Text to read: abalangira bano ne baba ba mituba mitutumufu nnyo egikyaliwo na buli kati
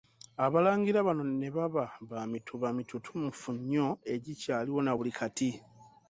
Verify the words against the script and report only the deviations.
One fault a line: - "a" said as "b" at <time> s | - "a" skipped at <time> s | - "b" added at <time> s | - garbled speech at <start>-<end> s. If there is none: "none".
none